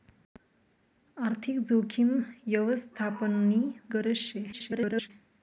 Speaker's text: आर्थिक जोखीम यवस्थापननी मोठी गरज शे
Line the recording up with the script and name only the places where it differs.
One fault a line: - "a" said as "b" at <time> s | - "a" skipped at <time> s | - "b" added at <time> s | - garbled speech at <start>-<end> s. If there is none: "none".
- "मोठी" skipped at 3.6 s
- garbled speech at 4.5-5.1 s